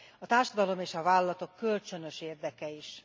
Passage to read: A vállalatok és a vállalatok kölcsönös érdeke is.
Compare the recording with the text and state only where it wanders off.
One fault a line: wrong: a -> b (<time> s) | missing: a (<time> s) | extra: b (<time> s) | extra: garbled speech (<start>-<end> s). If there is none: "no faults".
wrong: vállalatok -> társadalom (0.2 s)